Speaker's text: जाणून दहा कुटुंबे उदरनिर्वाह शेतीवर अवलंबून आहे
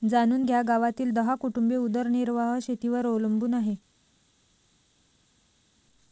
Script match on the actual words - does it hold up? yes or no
no